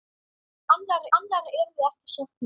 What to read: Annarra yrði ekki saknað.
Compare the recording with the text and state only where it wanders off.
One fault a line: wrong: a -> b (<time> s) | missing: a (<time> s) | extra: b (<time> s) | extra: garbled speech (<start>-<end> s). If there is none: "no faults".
extra: annarra (1.2 s)